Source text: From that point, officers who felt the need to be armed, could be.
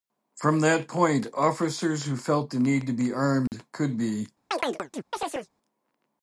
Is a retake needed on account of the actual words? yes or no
no